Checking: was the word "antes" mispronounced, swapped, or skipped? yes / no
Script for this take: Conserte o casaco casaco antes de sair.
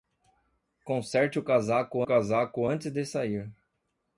no